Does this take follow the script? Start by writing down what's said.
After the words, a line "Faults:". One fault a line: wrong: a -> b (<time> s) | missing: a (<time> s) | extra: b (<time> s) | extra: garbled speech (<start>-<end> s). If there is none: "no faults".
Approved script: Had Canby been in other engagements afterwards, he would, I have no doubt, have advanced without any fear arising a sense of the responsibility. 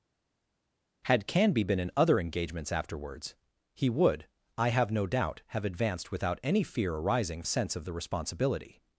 Had Canby been in other engagements afterwards, he would, I have no doubt, have advanced without any fear arising a sense of the responsibility.
Faults:
no faults